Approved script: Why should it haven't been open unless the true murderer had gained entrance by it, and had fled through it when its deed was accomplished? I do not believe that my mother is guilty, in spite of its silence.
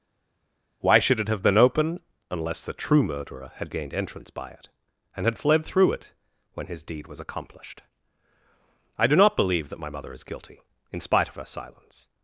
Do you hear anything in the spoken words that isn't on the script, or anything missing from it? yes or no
yes